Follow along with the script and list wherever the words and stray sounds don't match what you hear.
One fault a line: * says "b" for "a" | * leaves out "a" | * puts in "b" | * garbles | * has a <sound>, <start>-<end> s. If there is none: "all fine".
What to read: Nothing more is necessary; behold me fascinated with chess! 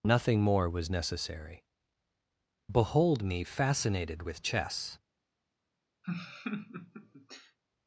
* says "was" for "is"
* has a laugh, 6.0-7.6 s